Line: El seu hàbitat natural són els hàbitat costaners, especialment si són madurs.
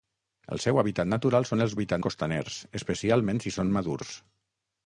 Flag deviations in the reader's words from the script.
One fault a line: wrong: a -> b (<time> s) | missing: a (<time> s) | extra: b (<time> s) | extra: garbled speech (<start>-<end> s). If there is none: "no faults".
no faults